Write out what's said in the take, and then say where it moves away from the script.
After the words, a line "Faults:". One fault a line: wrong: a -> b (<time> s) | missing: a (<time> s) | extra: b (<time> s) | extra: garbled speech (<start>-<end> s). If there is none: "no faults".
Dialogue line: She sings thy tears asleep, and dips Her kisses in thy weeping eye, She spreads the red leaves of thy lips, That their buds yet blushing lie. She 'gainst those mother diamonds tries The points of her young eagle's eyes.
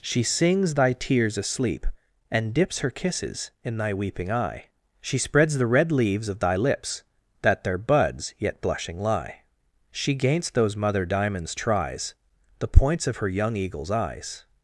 She sings thy tears asleep, and dips Her kisses in thy weeping eye, She spreads the red leaves of thy lips, That their buds yet blushing lie. She 'gainst those mother diamonds tries The points of her young eagle's eyes.
Faults:
no faults